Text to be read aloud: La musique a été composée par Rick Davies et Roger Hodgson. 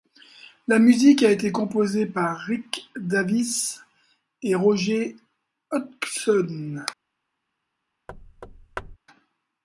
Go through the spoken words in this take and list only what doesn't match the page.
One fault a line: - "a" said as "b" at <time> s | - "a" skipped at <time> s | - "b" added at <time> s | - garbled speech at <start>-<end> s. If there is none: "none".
none